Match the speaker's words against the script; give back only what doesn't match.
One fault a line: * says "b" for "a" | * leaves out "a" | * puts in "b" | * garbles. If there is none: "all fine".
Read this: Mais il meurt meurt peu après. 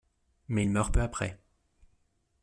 * leaves out "meurt"